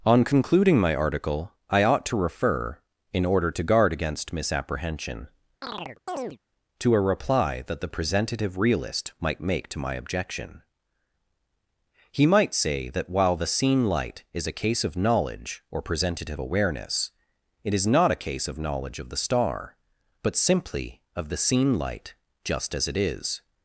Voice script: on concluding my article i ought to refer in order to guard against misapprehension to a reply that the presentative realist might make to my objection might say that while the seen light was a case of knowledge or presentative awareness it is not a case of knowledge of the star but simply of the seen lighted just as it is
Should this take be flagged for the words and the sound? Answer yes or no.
yes